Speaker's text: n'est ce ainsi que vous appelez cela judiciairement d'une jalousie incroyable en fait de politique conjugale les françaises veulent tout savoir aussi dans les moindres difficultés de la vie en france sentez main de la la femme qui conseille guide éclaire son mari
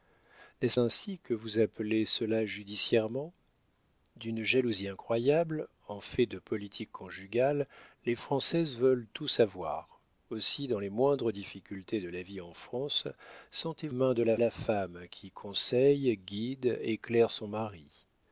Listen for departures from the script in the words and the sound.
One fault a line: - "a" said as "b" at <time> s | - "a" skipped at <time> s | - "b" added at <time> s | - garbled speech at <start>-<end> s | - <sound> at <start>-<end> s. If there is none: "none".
none